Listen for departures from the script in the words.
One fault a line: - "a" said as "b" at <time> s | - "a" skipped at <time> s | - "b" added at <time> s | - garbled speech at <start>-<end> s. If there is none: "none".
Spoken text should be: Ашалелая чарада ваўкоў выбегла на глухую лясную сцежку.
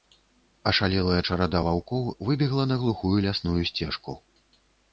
none